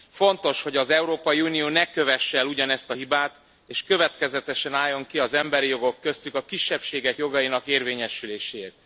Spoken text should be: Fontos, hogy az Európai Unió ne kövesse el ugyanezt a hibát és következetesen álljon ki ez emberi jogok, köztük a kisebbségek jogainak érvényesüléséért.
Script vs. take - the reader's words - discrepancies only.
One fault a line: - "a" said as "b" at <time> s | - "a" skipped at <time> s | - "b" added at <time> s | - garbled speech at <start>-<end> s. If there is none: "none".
- "ez" said as "az" at 5.2 s